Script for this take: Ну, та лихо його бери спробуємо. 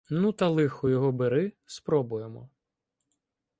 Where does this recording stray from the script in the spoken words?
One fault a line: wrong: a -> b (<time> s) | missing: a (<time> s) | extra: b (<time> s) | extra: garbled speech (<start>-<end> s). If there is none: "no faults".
no faults